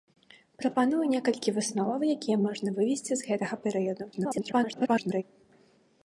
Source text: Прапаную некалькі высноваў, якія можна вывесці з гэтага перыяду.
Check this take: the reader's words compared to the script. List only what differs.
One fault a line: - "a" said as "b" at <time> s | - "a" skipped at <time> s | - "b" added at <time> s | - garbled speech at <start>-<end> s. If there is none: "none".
- garbled speech at 4.1-5.2 s